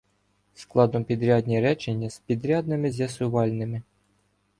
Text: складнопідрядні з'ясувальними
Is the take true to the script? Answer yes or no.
no